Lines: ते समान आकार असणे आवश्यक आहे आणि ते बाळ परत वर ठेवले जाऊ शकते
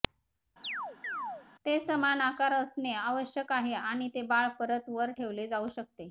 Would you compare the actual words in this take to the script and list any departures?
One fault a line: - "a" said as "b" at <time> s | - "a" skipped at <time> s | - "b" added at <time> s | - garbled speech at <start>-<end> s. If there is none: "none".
none